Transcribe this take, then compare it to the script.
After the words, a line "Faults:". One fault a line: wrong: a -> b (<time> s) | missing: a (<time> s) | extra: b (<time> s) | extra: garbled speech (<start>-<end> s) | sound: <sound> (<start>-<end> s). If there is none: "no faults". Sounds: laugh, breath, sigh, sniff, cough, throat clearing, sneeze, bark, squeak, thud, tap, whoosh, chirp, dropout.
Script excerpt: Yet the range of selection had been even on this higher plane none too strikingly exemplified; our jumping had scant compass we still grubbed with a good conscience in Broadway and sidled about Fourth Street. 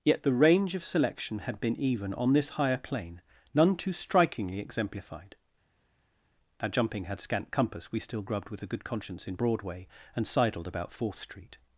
Yet the range of selection had been even on this higher plane none too strikingly exemplified; our jumping had scant compass we still grubbed with a good conscience in Broadway and sidled about Fourth Street.
Faults:
no faults